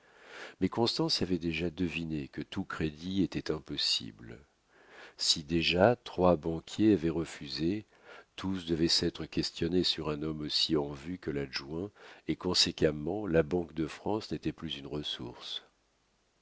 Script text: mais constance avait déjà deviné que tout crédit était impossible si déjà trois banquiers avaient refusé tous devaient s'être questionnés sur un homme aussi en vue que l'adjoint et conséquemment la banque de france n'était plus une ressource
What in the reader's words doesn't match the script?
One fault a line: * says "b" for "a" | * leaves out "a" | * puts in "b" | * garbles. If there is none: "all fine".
all fine